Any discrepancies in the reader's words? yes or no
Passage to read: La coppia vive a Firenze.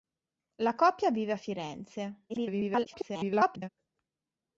yes